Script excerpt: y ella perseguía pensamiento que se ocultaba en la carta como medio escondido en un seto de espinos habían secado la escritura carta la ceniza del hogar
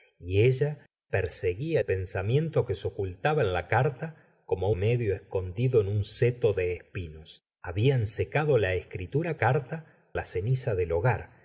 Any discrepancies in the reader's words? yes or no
no